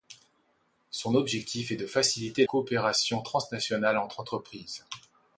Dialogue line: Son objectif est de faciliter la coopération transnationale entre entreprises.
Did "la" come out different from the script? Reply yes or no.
yes